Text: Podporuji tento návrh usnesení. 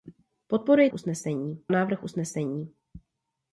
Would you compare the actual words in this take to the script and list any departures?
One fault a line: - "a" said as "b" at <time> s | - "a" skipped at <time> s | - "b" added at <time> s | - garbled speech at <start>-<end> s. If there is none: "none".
- "tento" said as "usnesení" at 0.9 s